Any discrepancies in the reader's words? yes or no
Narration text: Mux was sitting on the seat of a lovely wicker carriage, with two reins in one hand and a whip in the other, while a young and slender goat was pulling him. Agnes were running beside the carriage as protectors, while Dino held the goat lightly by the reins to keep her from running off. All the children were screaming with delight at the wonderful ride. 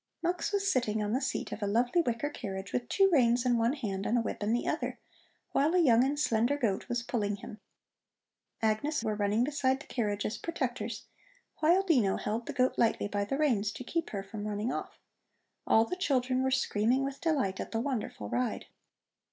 no